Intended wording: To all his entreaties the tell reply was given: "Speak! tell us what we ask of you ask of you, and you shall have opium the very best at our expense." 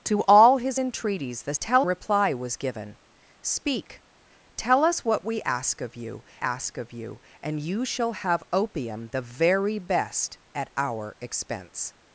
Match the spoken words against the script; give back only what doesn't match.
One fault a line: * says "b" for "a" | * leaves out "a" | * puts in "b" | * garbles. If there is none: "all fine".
all fine